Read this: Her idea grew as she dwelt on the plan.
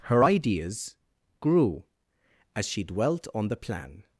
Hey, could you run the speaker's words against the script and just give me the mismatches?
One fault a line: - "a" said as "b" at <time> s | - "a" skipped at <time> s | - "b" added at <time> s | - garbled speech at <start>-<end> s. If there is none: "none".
- "idea" said as "ideas" at 0.2 s